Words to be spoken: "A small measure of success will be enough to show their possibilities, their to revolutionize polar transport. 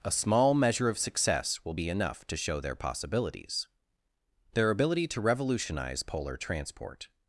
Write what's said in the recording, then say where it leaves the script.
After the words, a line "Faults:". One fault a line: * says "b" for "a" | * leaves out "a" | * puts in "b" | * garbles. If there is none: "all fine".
"A small measure of success will be enough to show their possibilities, their ability to revolutionize polar transport.
Faults:
* puts in "ability"